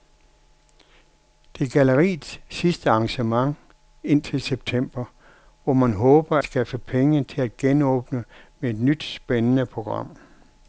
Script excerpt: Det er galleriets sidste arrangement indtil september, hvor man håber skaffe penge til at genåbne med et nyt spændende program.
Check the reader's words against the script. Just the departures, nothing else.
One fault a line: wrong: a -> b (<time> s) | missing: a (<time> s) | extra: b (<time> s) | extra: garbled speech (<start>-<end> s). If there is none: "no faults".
no faults